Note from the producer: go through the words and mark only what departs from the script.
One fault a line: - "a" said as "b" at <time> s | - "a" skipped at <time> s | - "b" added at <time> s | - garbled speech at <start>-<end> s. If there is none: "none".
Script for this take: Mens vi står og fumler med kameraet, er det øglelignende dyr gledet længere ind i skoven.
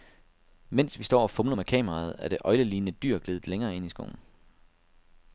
none